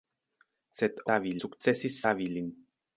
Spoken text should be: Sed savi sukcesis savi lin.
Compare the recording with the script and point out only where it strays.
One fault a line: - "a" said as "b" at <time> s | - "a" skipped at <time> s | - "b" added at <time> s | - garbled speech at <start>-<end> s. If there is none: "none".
none